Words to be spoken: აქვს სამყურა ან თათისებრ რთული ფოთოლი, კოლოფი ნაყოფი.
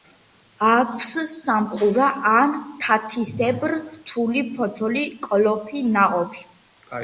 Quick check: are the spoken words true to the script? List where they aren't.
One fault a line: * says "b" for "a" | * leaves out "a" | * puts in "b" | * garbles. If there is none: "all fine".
all fine